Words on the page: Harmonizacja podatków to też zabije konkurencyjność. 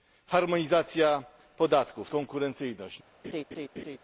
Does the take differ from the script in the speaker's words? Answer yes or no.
yes